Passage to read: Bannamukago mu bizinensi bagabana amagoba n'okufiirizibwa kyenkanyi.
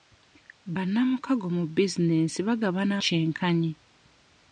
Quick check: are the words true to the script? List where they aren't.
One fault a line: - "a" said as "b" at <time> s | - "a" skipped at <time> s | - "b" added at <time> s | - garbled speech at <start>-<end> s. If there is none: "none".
- "amagoba n'okufiirizibwa" skipped at 2.9 s